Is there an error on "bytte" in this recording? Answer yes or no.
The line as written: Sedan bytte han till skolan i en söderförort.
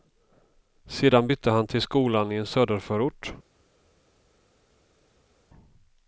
no